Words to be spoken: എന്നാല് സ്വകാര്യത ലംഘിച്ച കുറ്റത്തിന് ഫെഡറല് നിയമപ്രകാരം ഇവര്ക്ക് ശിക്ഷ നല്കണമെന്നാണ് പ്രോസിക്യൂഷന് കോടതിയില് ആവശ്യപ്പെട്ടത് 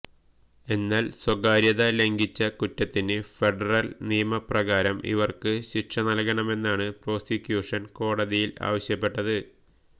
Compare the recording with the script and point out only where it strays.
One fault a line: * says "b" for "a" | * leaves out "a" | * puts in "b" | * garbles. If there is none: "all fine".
all fine